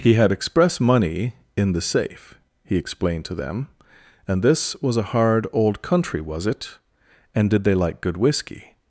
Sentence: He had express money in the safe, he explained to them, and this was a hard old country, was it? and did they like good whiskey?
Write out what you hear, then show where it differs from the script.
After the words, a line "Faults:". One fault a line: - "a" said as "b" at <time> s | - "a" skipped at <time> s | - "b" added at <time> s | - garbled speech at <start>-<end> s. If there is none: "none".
He had express money in the safe, he explained to them, and this was a hard old country, was it? and did they like good whiskey?
Faults:
none